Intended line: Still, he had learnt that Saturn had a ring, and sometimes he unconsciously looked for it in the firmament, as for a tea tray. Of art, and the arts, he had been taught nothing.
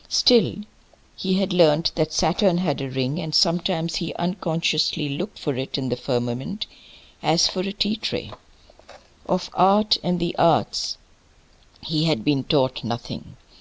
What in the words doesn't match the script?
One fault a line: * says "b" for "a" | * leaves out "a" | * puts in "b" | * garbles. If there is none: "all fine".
all fine